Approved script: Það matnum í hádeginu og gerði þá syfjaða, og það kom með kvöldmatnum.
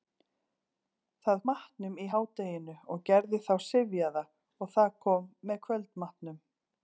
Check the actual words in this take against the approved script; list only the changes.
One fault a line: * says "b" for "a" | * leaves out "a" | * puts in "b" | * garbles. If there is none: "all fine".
all fine